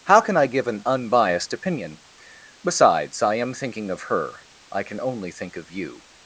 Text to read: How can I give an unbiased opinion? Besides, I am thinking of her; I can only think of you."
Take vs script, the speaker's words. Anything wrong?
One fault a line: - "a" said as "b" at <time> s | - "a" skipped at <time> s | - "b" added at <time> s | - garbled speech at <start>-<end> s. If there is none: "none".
none